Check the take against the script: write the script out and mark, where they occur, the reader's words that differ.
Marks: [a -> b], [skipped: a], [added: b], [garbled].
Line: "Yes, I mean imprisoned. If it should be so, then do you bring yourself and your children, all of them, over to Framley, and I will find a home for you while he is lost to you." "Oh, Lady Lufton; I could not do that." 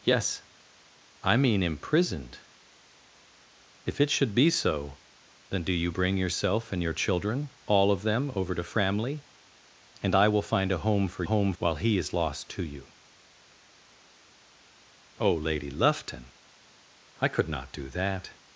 "Yes, I mean imprisoned. If it should be so, then do you bring yourself and your children, all of them, over to Framley, and I will find a home for [you -> home] while he is lost to you." "Oh, Lady Lufton; I could not do that."